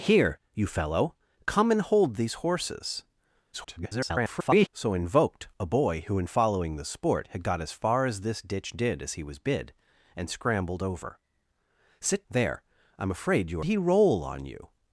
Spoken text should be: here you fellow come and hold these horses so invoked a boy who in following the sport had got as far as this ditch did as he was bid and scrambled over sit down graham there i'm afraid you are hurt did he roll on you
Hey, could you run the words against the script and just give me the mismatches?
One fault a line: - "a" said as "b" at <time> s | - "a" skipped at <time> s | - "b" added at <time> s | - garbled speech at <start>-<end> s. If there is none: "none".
- garbled speech at 3.5-4.7 s
- "down graham" skipped at 12.2 s
- "are hurt did" skipped at 13.6 s